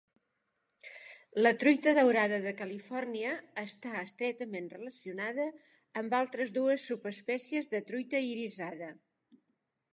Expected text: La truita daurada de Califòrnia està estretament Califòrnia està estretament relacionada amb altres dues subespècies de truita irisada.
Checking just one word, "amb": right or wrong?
right